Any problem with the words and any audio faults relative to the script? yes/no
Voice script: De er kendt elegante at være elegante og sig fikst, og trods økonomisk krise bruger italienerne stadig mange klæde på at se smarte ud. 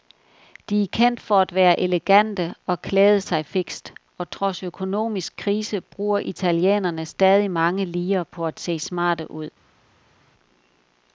yes